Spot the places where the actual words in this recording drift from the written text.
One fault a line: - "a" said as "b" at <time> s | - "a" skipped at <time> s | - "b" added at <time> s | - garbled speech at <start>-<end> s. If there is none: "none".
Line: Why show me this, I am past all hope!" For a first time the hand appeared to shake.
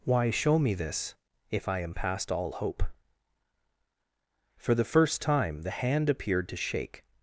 - "if" added at 1.5 s
- "a" said as "the" at 4.7 s